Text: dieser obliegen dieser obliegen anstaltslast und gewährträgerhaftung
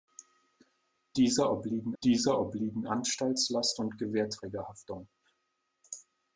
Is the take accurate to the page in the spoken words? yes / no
yes